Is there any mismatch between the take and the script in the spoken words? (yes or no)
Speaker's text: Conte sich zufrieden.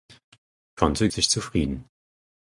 no